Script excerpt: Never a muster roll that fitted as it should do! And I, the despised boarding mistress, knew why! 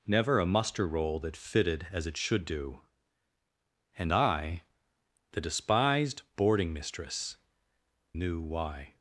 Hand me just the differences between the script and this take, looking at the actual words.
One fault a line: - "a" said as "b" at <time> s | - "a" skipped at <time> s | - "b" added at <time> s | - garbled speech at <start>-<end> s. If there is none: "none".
none